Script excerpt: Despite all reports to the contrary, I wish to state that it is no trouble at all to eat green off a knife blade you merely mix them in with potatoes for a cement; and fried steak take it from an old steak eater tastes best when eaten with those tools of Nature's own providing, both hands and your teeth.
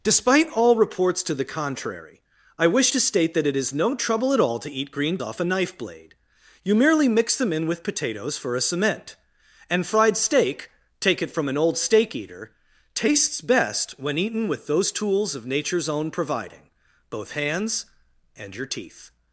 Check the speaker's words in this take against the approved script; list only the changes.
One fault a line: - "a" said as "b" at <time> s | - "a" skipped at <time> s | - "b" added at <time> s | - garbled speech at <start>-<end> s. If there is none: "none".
none